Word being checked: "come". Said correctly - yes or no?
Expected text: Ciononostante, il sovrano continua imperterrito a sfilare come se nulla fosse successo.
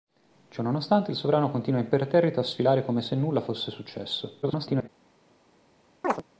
yes